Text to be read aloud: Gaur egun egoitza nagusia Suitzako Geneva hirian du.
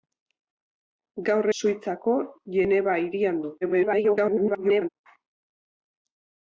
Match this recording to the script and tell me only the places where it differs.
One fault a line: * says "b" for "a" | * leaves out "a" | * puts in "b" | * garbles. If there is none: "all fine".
* leaves out "egun egoitza nagusia"
* garbles